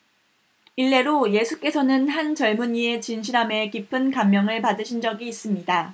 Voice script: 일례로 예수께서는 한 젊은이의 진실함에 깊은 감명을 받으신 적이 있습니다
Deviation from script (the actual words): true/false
false